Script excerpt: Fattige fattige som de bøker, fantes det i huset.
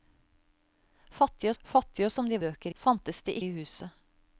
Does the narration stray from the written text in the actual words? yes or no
no